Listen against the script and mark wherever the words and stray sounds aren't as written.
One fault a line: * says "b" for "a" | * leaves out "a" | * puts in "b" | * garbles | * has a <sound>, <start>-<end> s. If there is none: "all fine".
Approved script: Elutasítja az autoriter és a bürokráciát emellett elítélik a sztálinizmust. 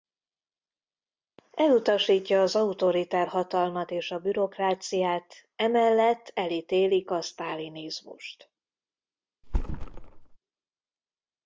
* puts in "hatalmat"
* has a thud, 9.4-10.4 s